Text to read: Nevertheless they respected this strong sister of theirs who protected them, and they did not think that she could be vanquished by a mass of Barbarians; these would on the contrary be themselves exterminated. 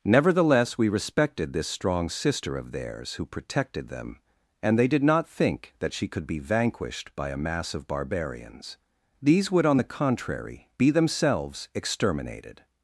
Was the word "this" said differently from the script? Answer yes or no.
no